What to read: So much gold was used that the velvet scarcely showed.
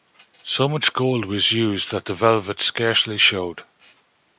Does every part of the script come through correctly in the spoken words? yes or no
yes